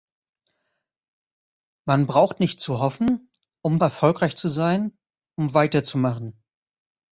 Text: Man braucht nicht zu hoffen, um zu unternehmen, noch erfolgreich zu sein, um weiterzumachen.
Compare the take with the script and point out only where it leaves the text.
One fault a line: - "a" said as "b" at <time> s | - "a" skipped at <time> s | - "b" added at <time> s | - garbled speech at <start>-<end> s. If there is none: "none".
- "zu unternehmen noch" skipped at 3.8 s